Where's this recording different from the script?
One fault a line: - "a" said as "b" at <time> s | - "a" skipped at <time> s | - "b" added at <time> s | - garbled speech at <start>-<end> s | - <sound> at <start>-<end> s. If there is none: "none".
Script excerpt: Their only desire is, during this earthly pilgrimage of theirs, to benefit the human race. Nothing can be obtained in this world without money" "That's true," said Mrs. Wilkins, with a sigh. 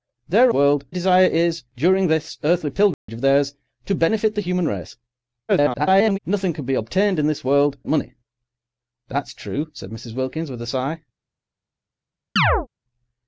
- "only" said as "world" at 0.5 s
- dropout at 2.9-3.1 s
- garbled speech at 5.5-6.2 s
- "without" skipped at 7.8 s
- chirp at 12.4-12.7 s